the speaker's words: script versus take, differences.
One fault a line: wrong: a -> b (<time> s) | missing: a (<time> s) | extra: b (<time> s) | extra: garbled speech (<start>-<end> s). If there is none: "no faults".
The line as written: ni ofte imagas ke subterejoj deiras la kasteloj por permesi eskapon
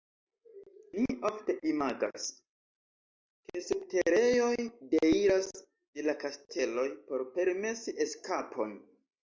extra: de (5.6 s)